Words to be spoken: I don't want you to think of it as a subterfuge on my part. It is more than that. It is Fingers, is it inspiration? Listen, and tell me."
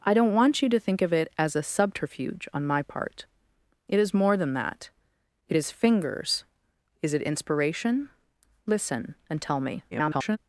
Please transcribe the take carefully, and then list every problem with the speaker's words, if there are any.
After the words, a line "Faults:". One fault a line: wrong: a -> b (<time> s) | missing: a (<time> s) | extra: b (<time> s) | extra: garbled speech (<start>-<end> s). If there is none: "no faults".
I don't want you to think of it as a subterfuge on my part. It is more than that. It is Fingers, is it inspiration? Listen, and tell me." [garbled]
Faults:
extra: garbled speech (9.9-10.4 s)